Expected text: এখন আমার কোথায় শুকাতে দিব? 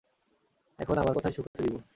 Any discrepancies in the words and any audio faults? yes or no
yes